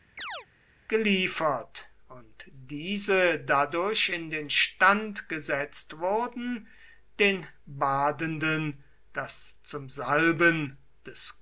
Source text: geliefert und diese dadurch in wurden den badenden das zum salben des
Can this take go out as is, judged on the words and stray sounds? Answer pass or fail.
fail